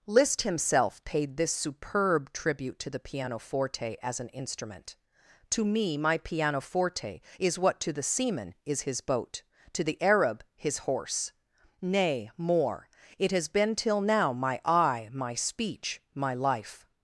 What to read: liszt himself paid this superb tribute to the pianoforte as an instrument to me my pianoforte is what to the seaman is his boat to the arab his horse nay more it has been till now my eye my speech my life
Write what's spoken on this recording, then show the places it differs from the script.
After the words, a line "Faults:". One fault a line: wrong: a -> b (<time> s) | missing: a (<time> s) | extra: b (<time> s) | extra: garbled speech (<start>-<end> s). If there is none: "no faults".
liszt himself paid this superb tribute to the pianoforte as an instrument to me my pianoforte is what to the seaman is his boat to the arab his horse nay more it has been till now my eye my speech my life
Faults:
no faults